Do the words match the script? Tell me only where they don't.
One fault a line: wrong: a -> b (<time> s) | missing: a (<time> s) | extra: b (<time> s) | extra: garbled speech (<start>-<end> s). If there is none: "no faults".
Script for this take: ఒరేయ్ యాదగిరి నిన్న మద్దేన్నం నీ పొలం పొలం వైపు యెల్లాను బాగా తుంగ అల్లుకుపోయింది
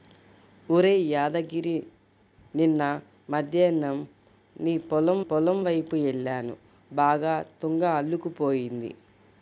no faults